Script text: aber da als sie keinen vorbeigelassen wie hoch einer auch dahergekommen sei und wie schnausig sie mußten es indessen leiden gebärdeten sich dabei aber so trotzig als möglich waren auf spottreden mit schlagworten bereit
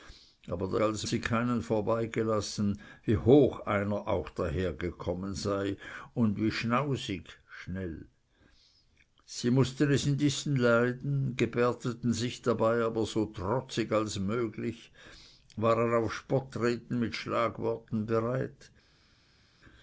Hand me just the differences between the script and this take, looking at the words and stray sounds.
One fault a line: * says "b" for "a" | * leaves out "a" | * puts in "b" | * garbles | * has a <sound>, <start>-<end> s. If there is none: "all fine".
all fine